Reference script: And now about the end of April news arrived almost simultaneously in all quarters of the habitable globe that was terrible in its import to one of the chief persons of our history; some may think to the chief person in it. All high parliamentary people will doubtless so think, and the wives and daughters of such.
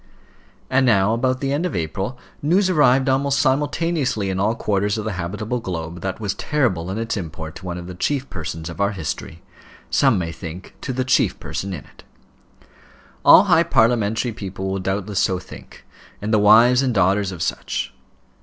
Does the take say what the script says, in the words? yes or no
yes